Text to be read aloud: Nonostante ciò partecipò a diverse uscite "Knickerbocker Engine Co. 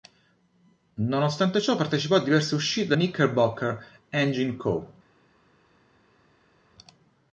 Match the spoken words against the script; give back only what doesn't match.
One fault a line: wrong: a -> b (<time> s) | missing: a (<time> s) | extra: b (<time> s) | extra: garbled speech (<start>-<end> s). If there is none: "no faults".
no faults